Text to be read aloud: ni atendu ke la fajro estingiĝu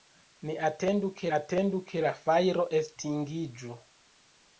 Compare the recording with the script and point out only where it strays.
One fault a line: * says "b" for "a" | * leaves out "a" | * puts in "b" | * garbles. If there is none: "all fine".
* puts in "atendu ke"